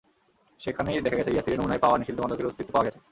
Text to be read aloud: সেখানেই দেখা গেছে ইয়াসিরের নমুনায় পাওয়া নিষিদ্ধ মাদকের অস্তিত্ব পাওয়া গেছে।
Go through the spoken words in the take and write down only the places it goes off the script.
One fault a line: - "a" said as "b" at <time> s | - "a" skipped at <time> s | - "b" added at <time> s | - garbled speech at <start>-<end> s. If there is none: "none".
none